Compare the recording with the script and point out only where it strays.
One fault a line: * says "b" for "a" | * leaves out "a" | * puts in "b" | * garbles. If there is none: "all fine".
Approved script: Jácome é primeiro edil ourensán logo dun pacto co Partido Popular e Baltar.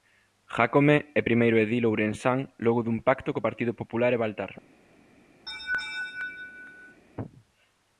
all fine